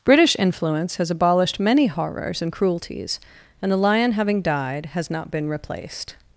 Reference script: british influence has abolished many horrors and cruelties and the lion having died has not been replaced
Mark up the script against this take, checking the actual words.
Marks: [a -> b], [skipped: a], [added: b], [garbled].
british influence has abolished many horrors and cruelties and the lion having died has not been replaced